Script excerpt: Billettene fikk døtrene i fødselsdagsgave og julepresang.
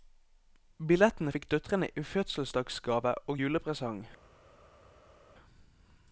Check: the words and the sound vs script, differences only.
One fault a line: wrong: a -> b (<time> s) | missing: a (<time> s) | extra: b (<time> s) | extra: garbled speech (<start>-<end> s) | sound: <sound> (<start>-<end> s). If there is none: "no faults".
no faults